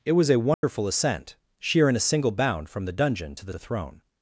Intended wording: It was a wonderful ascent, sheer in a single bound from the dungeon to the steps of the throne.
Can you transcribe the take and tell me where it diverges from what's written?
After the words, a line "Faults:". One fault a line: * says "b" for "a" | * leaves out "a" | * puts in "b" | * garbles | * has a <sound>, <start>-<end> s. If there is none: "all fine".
It was a wonderful ascent, sheer in a single bound from the dungeon to the the throne.
Faults:
* has a dropout, 0.5-0.6 s
* leaves out "steps of"